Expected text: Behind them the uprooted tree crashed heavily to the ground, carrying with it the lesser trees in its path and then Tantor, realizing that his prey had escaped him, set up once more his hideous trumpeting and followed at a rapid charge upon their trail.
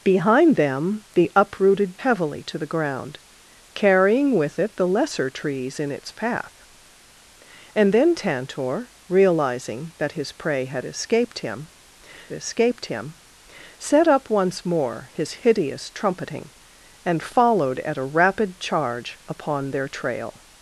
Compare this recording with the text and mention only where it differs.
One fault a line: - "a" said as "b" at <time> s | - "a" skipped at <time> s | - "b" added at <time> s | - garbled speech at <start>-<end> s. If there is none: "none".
- "tree crashed" skipped at 2.0 s
- "escaped him" added at 12.3 s